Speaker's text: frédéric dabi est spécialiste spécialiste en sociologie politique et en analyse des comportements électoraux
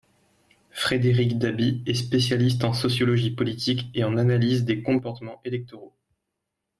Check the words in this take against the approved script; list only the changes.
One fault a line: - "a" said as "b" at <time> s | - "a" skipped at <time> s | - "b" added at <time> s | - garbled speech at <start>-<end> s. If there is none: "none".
- "spécialiste" skipped at 2.6 s